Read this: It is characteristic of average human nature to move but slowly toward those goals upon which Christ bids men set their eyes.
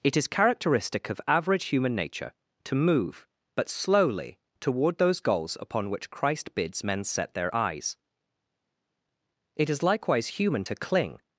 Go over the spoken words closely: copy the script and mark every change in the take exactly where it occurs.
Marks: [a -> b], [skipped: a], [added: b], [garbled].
It is characteristic of average human nature to move but slowly toward those goals upon which Christ bids men set their eyes. [added: It is likewise human to cling]